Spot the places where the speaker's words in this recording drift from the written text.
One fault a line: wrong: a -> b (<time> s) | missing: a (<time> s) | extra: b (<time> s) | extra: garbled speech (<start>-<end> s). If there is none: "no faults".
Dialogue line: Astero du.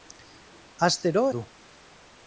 no faults